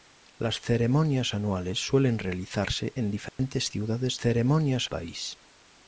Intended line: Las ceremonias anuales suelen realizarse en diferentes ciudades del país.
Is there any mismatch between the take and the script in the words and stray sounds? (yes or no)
yes